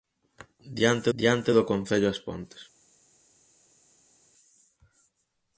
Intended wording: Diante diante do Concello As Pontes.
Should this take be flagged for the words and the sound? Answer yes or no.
no